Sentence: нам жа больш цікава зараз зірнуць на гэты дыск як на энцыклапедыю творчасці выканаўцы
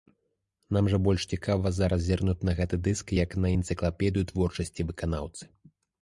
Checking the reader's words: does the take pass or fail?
pass